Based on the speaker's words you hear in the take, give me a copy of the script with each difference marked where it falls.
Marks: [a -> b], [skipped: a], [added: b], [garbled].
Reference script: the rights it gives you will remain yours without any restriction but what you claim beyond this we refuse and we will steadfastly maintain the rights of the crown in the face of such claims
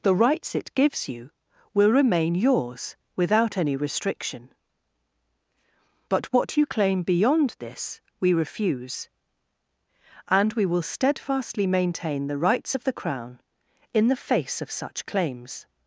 the rights it gives you will remain yours without any restriction but what you claim beyond this we refuse and we will steadfastly maintain the rights of the crown in the face of such claims